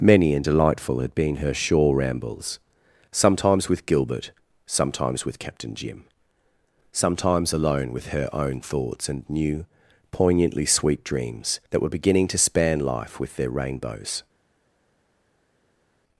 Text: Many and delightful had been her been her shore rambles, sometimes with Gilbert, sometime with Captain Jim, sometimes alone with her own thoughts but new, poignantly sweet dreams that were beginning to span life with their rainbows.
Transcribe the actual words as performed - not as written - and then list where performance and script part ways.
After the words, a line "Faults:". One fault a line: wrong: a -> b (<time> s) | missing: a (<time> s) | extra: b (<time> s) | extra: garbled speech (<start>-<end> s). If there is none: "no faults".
Many and delightful had been her shore rambles, sometimes with Gilbert, sometimes with Captain Jim, sometimes alone with her own thoughts and new, poignantly sweet dreams that were beginning to span life with their rainbows.
Faults:
missing: been her (1.5 s)
wrong: sometime -> sometimes (4.6 s)
wrong: but -> and (9.1 s)